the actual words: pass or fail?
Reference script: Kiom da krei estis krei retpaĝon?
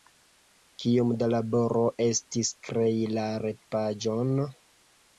fail